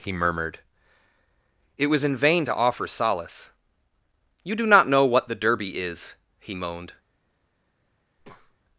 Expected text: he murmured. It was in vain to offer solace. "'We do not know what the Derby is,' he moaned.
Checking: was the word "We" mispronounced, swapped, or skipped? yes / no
yes